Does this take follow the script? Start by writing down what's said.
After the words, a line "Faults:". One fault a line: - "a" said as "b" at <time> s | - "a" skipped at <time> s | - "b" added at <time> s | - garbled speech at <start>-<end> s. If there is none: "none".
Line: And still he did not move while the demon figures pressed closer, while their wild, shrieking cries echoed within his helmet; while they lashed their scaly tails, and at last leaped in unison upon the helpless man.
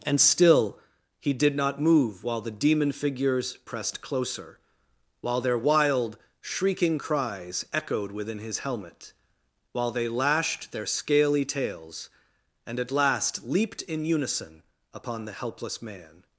And still he did not move while the demon figures pressed closer, while their wild, shrieking cries echoed within his helmet; while they lashed their scaly tails, and at last leaped in unison upon the helpless man.
Faults:
none